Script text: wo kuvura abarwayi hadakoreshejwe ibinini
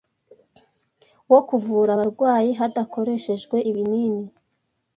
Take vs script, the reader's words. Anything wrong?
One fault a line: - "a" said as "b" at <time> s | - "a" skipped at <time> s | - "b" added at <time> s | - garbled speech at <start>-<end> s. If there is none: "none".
none